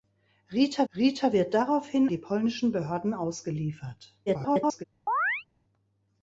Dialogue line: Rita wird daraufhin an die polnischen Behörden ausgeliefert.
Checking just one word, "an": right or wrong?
wrong